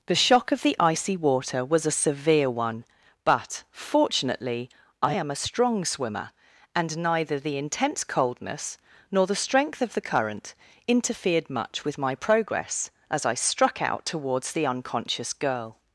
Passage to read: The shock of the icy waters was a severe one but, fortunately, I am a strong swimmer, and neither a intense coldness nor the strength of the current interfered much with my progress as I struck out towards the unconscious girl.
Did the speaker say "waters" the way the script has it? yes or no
no